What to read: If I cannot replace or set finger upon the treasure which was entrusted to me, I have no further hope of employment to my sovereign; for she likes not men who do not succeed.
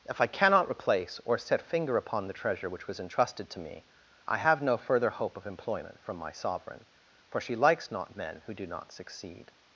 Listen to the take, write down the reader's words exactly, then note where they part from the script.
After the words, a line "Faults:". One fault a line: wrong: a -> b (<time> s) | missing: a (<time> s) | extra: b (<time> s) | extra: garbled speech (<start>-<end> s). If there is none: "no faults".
If I cannot replace or set finger upon the treasure which was entrusted to me, I have no further hope of employment from my sovereign; for she likes not men who do not succeed.
Faults:
wrong: to -> from (6.0 s)